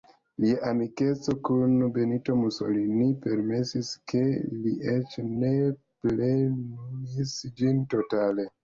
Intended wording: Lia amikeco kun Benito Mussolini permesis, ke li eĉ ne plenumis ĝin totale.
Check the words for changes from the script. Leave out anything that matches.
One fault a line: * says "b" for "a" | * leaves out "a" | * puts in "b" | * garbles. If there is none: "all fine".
all fine